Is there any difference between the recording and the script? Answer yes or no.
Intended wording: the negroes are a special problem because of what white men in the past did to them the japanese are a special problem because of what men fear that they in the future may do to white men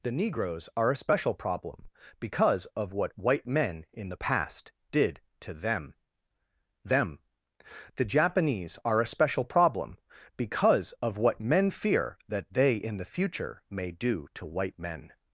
yes